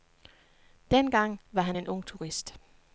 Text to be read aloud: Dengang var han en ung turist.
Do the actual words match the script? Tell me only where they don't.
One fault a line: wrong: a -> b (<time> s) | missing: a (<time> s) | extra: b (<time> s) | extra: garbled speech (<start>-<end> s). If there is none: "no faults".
no faults